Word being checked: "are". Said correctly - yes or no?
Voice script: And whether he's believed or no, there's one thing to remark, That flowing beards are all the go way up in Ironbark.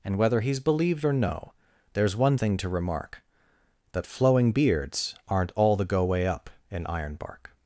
no